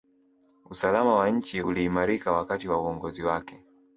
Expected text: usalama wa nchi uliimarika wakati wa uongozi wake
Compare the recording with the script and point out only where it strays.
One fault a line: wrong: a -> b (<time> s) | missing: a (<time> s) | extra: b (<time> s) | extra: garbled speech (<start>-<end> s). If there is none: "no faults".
no faults